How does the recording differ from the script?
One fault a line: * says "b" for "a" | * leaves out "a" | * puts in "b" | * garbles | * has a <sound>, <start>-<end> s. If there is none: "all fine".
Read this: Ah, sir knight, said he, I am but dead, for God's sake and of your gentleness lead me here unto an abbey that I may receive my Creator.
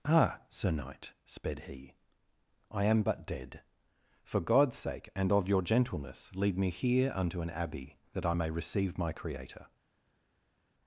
* says "sped" for "said"